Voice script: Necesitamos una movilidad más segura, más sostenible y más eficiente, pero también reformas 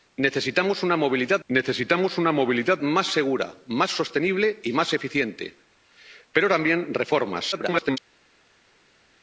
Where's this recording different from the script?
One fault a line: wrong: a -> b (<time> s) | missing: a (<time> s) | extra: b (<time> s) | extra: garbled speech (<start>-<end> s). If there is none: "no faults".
extra: necesitamos una movilidad (1.5 s)
extra: garbled speech (7.5-8.0 s)